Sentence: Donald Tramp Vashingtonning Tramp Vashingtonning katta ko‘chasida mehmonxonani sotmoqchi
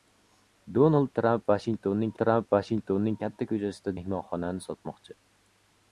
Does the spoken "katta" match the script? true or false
true